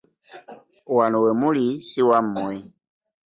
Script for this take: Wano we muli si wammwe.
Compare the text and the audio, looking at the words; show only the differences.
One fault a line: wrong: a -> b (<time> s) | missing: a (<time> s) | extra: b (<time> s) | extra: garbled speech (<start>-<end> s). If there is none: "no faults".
no faults